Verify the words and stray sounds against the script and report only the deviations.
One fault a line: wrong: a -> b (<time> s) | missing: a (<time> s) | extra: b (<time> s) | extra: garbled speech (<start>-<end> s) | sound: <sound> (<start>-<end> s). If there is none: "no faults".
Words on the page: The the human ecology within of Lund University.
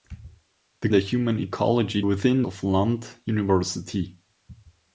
no faults